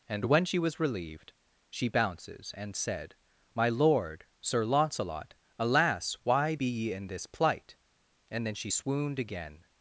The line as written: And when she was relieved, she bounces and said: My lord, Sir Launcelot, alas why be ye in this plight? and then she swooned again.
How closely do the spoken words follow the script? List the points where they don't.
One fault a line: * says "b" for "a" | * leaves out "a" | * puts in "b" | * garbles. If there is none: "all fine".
all fine